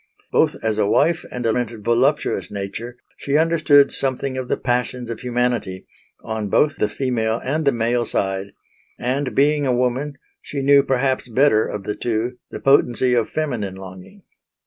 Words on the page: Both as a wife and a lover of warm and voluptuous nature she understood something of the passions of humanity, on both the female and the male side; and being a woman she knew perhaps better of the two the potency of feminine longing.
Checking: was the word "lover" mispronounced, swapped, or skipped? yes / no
yes